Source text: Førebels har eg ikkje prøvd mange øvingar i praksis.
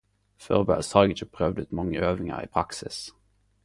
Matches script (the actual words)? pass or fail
fail